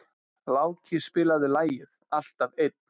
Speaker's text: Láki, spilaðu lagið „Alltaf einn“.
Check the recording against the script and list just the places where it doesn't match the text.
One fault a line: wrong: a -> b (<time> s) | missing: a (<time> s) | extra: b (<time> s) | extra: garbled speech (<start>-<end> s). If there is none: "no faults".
no faults